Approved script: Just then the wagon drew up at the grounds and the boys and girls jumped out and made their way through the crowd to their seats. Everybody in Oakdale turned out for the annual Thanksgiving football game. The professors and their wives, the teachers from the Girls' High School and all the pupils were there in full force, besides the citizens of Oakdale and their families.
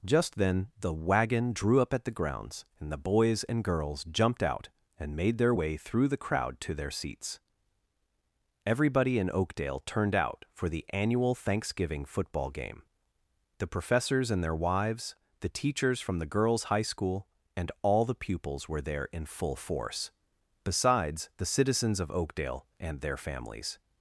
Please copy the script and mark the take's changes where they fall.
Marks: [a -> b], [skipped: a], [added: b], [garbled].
Just then the wagon drew up at the grounds and the boys and girls jumped out and made their way through the crowd to their seats. Everybody in Oakdale turned out for the annual Thanksgiving football game. The professors and their wives, the teachers from the Girls' High School and all the pupils were there in full force, besides the citizens of Oakdale and their families.